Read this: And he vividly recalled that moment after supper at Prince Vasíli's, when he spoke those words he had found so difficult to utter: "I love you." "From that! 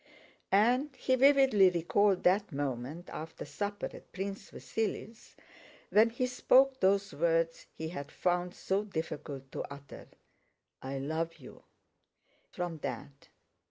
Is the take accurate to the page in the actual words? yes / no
yes